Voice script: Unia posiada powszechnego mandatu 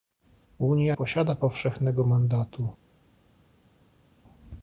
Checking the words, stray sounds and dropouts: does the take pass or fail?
pass